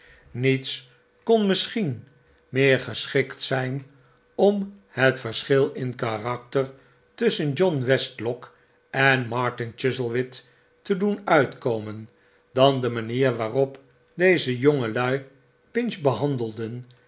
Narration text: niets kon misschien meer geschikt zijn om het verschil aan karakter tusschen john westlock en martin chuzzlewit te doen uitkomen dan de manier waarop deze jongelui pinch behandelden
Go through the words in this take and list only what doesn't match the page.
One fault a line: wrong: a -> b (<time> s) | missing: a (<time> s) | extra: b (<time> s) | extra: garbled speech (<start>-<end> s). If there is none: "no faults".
wrong: aan -> in (5.7 s)